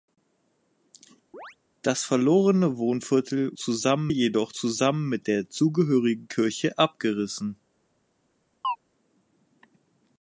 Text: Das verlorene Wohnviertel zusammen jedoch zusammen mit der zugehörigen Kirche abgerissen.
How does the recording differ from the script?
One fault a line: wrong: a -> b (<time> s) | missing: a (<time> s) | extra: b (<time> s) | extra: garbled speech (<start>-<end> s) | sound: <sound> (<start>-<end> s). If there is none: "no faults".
sound: chirp (1.3-1.6 s)
sound: chirp (8.6-8.8 s)